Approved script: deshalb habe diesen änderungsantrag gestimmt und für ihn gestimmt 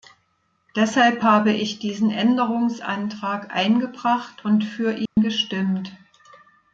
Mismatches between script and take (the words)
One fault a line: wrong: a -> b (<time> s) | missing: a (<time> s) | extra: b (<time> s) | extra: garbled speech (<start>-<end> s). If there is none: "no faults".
extra: ich (1.5 s)
wrong: gestimmt -> eingebracht (3.5 s)